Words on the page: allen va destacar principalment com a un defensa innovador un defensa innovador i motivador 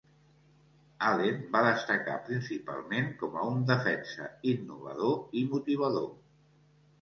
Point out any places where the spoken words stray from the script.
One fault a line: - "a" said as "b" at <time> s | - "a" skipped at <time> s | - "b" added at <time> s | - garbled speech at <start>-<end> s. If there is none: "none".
- "un defensa innovador" skipped at 5.2 s